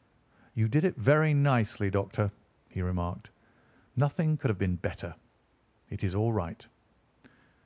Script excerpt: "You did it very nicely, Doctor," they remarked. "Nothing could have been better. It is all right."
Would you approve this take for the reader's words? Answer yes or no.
no